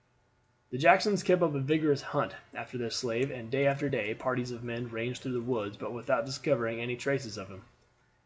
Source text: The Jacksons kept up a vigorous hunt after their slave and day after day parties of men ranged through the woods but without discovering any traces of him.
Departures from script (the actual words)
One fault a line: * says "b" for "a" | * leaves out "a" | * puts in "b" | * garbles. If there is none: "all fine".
all fine